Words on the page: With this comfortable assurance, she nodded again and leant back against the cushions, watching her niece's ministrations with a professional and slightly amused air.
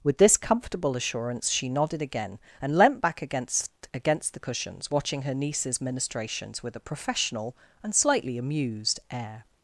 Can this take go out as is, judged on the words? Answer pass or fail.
fail